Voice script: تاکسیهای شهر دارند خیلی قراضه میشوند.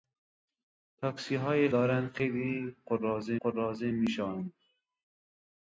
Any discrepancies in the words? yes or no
yes